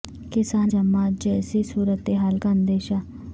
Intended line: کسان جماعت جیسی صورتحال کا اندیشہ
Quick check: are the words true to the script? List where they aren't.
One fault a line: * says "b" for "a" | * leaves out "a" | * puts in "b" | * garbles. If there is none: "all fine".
all fine